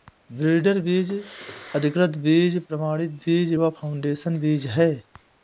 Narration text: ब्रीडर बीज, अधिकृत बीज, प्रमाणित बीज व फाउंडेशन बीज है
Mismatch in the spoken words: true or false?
false